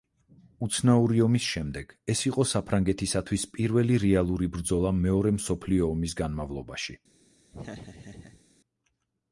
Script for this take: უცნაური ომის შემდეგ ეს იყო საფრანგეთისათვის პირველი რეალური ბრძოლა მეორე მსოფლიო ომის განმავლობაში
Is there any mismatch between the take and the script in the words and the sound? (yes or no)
yes